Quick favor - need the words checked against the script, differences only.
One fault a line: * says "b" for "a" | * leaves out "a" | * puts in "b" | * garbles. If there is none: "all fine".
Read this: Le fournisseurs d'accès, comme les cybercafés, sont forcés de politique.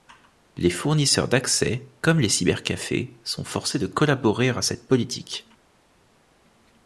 * says "Les" for "Le"
* puts in "collaborer à cette"